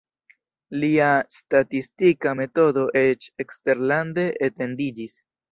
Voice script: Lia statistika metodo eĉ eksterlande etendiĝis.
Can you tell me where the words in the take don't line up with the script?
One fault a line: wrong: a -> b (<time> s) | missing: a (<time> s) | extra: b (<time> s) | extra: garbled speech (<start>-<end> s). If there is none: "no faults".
no faults